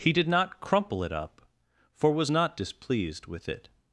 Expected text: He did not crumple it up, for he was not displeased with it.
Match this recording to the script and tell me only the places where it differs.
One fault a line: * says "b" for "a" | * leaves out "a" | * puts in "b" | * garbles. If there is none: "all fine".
* leaves out "he"